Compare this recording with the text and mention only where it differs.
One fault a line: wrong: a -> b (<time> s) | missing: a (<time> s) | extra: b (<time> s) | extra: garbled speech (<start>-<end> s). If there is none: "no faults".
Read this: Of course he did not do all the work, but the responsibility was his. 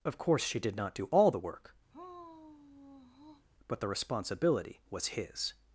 wrong: he -> she (0.4 s)